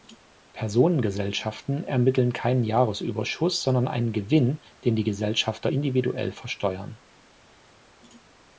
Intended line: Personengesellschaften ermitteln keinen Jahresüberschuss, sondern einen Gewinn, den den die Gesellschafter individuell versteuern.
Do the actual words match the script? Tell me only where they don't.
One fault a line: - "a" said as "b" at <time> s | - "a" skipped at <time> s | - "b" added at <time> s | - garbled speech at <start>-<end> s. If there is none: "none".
- "den" skipped at 5.0 s